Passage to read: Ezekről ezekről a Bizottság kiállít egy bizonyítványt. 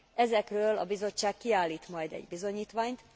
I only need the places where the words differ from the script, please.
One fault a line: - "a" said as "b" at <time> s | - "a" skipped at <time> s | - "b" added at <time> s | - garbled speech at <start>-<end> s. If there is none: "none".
- "ezekről" skipped at 0.8 s
- "majd" added at 1.9 s